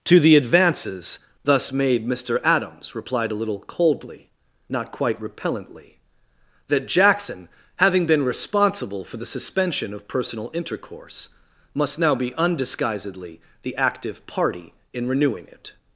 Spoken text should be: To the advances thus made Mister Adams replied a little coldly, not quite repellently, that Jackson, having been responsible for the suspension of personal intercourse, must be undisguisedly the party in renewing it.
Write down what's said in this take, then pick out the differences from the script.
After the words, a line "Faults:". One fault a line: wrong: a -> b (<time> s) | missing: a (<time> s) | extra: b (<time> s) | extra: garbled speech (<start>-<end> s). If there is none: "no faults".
To the advances thus made Mister Adams replied a little coldly, not quite repellently, that Jackson, having been responsible for the suspension of personal intercourse, must now be undisguisedly the active party in renewing it.
Faults:
extra: now (12.0 s)
extra: active (13.8 s)